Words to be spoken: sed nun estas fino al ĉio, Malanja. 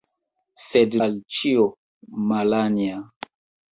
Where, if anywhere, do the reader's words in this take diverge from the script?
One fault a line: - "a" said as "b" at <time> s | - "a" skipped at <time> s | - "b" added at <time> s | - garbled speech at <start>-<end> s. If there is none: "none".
- "nun estas fino" skipped at 1.0 s